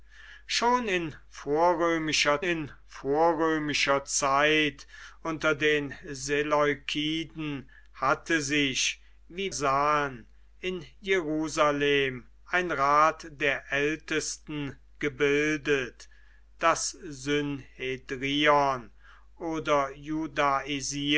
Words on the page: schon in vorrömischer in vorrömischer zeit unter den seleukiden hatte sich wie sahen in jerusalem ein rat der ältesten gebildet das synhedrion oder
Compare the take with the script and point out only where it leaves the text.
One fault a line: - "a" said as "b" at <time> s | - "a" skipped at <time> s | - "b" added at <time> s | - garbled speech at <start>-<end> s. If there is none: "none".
none